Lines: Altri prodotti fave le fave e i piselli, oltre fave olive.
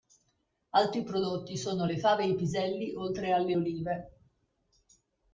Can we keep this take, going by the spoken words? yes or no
no